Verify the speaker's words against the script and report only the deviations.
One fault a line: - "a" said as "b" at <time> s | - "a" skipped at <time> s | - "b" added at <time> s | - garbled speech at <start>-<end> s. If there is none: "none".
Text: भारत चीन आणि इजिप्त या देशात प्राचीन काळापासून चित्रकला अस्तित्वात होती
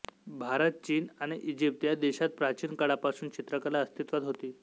none